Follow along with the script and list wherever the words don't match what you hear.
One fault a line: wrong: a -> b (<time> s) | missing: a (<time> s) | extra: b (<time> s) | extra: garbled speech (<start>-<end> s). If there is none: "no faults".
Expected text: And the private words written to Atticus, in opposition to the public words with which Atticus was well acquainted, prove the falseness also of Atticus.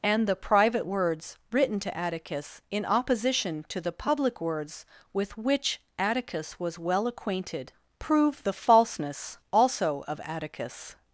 no faults